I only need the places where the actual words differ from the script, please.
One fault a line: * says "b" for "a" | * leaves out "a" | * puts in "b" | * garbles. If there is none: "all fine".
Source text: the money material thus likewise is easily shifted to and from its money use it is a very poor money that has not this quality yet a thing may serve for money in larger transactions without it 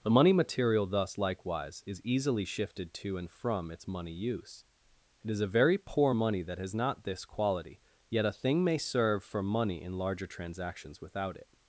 all fine